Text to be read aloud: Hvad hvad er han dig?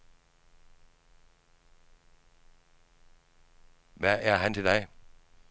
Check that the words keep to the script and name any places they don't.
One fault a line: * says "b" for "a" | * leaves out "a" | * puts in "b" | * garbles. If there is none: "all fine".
* leaves out "hvad"
* puts in "til"